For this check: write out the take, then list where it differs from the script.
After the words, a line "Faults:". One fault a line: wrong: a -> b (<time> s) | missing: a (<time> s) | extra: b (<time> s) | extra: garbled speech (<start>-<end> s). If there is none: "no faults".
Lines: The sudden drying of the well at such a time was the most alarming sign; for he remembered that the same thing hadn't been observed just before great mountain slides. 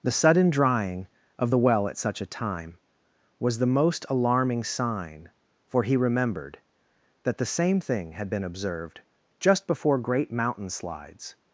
The sudden drying of the well at such a time was the most alarming sign; for he remembered that the same thing had been observed just before great mountain slides.
Faults:
wrong: hadn't -> had (8.1 s)